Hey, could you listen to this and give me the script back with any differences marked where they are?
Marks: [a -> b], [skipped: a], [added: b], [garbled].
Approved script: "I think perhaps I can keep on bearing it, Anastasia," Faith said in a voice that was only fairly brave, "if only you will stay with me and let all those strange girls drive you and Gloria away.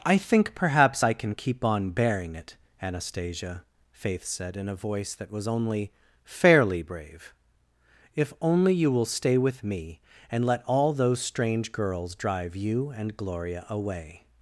"I think perhaps I can keep on bearing it, Anastasia," Faith said in a voice that was only fairly brave, "if only you will stay with me and let all those strange girls drive you and Gloria away.